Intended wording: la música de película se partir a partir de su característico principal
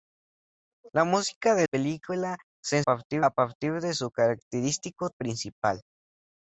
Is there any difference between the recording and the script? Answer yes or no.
no